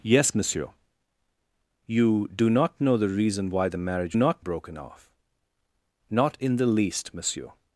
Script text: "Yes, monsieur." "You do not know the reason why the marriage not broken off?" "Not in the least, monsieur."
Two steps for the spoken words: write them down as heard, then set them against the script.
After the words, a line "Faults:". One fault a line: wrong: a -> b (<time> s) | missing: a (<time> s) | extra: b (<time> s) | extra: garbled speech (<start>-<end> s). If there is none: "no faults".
"Yes, monsieur." "You do not know the reason why the marriage not broken off?" "Not in the least, monsieur."
Faults:
no faults